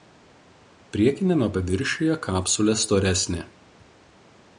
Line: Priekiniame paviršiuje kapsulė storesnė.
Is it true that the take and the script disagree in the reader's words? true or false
false